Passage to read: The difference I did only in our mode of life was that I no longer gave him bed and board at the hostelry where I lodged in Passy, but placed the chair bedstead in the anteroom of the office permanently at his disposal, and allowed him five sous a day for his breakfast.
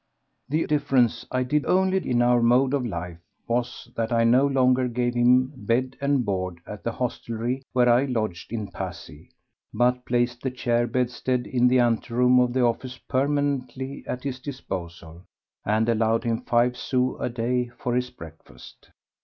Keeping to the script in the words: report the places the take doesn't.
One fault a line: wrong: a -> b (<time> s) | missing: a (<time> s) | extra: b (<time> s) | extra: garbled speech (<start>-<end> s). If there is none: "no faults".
no faults